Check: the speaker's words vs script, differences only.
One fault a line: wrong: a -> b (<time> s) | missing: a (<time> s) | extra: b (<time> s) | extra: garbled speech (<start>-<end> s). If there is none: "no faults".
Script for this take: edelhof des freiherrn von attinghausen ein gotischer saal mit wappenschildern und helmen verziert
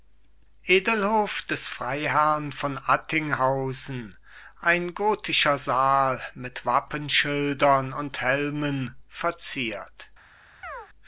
no faults